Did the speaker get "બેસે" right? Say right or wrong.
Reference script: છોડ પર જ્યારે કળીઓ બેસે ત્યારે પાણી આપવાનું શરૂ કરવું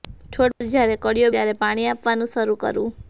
wrong